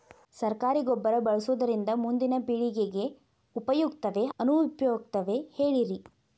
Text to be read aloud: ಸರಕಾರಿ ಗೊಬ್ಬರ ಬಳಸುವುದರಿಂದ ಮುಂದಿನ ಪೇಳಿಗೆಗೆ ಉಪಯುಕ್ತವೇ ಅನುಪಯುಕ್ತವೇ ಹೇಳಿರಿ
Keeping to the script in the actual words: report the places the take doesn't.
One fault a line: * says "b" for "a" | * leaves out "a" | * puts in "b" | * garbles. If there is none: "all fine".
all fine